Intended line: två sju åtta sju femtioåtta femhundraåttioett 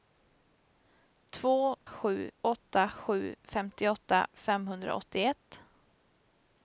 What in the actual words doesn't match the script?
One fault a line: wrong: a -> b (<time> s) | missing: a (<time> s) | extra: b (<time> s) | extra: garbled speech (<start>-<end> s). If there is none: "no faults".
no faults